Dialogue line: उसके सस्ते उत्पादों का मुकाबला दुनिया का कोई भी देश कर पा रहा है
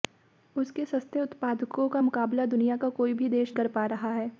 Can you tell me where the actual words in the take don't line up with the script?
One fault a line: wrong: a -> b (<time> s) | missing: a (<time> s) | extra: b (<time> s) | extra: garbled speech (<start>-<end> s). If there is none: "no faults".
no faults